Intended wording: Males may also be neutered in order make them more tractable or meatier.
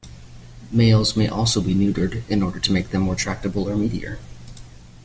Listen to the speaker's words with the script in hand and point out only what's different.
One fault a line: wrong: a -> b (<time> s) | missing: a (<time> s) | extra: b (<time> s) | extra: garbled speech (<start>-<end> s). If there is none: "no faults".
extra: to (2.6 s)